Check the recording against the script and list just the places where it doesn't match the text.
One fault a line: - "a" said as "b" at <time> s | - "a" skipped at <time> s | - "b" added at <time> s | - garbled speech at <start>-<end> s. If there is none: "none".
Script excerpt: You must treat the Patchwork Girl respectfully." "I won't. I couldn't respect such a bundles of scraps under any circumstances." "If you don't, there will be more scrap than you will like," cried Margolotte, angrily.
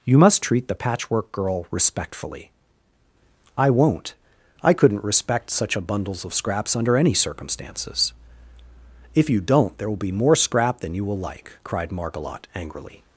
none